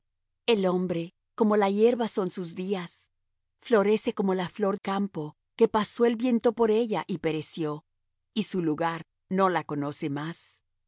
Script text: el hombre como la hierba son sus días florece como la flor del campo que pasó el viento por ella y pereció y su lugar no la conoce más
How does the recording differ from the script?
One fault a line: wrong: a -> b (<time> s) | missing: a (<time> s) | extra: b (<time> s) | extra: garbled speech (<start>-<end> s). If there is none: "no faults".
missing: del (4.8 s)